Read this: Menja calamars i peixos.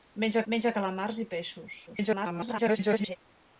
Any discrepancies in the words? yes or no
yes